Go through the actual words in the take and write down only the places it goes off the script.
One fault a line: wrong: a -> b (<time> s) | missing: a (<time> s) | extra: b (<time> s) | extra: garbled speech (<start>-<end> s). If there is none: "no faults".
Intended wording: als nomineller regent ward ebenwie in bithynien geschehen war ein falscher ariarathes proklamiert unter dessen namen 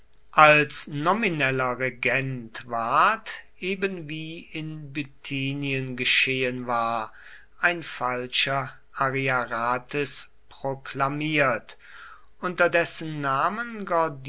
no faults